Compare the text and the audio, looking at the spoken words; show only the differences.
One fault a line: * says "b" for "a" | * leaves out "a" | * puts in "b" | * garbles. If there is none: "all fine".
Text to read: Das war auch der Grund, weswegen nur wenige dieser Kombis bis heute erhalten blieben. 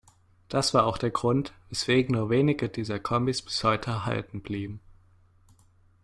all fine